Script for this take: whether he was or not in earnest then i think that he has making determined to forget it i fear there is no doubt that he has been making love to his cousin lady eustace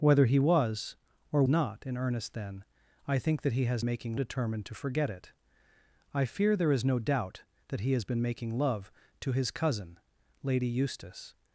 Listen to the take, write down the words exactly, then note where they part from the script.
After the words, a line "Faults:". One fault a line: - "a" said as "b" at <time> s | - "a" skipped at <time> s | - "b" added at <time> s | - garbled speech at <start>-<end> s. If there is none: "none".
whether he was or not in earnest then i think that he has making determined to forget it i fear there is no doubt that he has been making love to his cousin lady eustace
Faults:
none